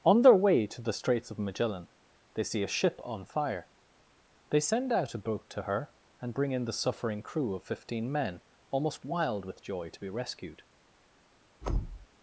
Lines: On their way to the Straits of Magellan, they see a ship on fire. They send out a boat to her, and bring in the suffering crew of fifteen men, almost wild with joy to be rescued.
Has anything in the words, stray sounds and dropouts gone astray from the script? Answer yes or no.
yes